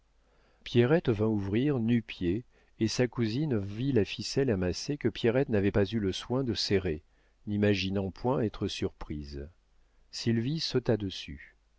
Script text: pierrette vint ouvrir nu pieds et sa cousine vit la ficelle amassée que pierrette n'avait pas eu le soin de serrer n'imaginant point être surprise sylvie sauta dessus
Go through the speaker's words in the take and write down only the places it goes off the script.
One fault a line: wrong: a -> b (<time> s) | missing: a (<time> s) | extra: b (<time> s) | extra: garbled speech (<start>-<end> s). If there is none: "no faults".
no faults